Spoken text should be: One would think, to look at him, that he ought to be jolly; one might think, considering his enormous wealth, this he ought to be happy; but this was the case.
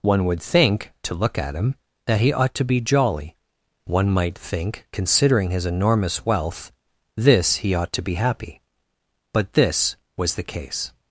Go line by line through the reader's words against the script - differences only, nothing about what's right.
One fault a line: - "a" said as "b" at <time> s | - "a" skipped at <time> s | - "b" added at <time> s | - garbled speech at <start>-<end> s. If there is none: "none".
none